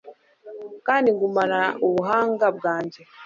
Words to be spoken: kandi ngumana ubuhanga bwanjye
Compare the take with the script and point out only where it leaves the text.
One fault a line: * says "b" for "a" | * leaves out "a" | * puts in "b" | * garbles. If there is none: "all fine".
all fine